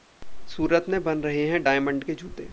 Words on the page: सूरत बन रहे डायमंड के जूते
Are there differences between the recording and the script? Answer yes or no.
yes